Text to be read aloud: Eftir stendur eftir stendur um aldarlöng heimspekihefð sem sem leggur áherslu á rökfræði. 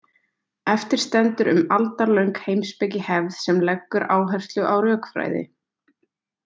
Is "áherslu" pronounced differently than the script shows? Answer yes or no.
no